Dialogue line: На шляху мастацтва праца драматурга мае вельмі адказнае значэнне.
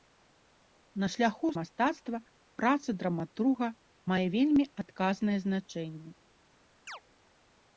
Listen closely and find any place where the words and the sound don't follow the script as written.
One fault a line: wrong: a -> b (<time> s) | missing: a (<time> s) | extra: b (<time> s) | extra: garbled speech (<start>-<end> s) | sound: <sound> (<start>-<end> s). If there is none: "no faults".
sound: chirp (6.9-7.0 s)